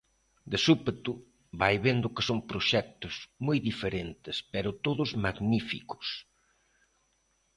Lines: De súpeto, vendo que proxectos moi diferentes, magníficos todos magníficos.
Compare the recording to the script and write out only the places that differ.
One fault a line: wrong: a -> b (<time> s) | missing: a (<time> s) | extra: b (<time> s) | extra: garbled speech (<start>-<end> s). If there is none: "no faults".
extra: vai (1.6 s)
extra: son (2.3 s)
wrong: magníficos -> pero (4.5 s)